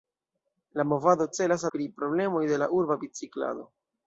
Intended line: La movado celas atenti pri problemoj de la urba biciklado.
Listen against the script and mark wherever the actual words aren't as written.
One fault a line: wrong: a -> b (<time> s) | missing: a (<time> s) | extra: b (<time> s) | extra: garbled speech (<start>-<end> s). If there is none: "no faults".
missing: atenti (1.6 s)